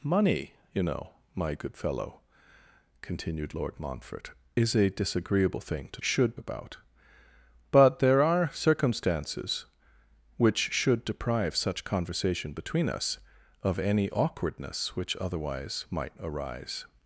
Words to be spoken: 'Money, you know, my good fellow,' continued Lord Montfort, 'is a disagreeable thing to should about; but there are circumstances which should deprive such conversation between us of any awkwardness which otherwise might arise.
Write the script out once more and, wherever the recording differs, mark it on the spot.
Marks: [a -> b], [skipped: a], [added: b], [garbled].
'Money, you know, my good fellow,' continued Lord Montfort, 'is a disagreeable thing to should about; but there are circumstances which should deprive such conversation between us of any awkwardness which otherwise might arise.